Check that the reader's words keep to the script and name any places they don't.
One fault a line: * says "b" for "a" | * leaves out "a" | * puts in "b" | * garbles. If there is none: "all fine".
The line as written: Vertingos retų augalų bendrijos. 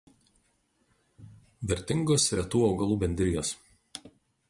all fine